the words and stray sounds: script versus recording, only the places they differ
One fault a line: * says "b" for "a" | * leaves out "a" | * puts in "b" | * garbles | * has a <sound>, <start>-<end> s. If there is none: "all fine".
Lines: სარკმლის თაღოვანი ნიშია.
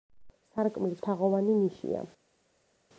all fine